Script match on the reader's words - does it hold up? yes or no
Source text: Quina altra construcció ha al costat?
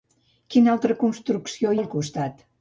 yes